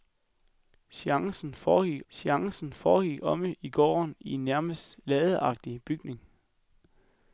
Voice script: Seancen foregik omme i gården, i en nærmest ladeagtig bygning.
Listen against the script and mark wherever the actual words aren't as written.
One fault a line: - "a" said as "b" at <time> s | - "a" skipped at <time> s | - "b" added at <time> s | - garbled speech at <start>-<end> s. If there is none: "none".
- "seancen foregik" added at 2.1 s